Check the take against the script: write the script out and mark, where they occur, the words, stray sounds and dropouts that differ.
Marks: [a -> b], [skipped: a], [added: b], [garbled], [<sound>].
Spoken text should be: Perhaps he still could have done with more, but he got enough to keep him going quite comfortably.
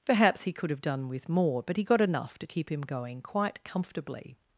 Perhaps he [skipped: still] could have done with more, but he got enough to keep him going quite comfortably.